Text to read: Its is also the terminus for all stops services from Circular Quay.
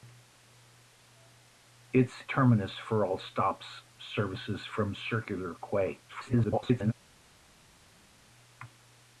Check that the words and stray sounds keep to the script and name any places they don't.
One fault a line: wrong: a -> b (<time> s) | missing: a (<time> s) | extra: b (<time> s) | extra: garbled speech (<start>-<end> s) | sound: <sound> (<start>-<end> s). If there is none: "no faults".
missing: is also the (2.2 s)
extra: garbled speech (6.1-6.9 s)